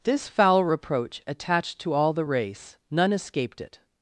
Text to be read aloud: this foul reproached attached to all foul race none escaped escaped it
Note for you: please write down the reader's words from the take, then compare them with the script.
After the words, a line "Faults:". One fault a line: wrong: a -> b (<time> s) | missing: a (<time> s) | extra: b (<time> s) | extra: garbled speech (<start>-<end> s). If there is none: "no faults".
this foul reproach attached to all the race none escaped it
Faults:
wrong: reproached -> reproach (0.6 s)
wrong: foul -> the (2.1 s)
missing: escaped (3.6 s)